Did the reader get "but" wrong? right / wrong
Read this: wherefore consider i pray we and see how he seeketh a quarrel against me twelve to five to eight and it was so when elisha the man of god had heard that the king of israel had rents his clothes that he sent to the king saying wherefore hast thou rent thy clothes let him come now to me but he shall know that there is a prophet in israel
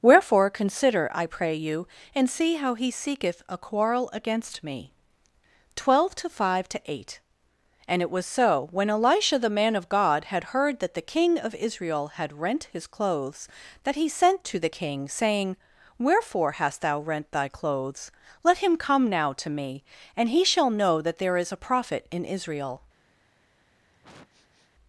wrong